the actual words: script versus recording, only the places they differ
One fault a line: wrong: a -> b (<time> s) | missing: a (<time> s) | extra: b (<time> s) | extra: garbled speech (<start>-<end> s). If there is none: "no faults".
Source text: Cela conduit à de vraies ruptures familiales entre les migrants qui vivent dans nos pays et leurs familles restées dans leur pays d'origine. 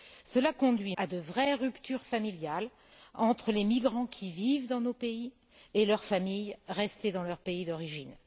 no faults